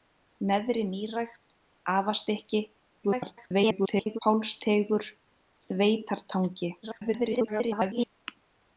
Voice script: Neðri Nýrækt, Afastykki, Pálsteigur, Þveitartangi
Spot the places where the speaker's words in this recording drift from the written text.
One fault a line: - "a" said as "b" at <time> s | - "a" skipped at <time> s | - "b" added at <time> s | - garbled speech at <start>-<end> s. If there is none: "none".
- garbled speech at 3.0-4.2 s
- garbled speech at 6.8-8.1 s